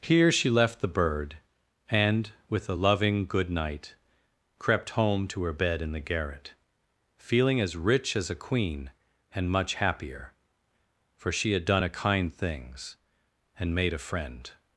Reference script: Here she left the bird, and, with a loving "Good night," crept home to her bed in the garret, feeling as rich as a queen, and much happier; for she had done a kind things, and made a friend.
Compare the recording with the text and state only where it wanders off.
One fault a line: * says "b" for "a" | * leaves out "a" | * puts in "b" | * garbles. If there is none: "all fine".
all fine